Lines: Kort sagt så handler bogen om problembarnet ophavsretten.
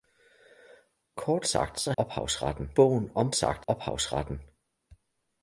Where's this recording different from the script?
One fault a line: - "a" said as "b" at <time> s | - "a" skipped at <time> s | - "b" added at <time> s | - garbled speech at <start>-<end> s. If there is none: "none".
- "handler" said as "ophavsretten" at 2.0 s
- "problembarnet" said as "sagt" at 3.3 s